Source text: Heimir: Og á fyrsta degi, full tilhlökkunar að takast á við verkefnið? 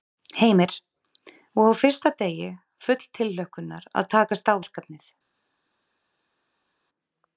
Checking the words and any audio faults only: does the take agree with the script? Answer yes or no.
no